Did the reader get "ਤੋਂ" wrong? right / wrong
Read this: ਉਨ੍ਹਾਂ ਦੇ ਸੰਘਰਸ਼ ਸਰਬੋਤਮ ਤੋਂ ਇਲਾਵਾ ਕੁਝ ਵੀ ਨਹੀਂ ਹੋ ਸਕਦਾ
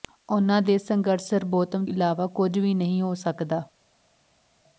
wrong